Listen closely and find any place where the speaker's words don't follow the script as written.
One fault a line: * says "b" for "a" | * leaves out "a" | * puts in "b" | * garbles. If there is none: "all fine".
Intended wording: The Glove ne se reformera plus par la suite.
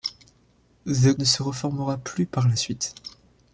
* leaves out "Glove"